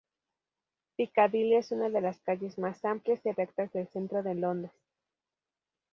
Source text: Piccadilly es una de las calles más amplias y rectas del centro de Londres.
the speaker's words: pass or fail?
pass